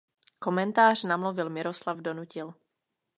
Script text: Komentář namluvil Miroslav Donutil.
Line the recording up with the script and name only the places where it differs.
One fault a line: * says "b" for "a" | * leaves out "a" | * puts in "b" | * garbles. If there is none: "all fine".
all fine